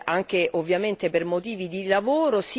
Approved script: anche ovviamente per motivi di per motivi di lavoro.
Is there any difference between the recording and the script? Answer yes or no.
yes